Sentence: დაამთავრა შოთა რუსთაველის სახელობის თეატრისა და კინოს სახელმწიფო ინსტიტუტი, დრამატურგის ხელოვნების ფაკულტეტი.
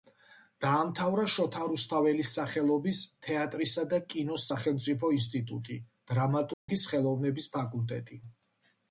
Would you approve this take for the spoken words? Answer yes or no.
yes